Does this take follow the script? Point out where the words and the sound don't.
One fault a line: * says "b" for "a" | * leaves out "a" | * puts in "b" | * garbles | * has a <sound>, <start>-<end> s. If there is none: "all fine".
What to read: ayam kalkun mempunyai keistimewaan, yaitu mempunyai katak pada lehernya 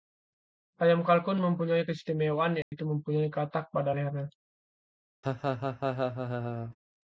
* has a dropout, 2.6-2.7 s
* has a laugh, 5.2-6.8 s